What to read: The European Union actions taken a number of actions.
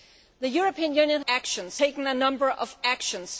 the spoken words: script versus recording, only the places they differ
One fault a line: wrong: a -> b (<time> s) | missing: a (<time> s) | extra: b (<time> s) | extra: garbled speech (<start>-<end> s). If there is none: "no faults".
no faults